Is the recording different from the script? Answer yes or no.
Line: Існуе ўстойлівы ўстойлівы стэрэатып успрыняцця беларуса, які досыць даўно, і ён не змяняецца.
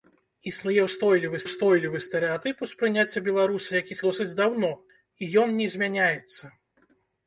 no